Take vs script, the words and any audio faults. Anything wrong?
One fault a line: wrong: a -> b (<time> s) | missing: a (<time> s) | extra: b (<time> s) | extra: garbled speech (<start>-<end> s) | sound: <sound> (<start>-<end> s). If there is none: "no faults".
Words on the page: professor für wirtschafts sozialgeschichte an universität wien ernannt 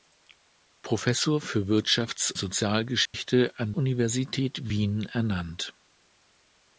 sound: dropout (3.1-3.1 s)